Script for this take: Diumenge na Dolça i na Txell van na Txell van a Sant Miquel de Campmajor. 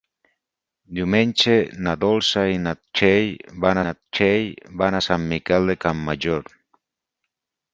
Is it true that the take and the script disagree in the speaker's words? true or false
false